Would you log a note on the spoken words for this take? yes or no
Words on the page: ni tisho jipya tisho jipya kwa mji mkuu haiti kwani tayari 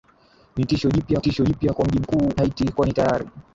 no